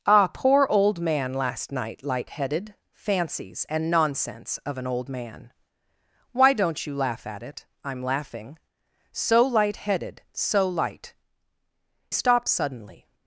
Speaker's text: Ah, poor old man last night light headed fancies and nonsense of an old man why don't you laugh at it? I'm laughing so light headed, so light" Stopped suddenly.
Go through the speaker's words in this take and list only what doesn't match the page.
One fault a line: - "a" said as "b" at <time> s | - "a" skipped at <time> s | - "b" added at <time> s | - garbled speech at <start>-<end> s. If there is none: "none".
none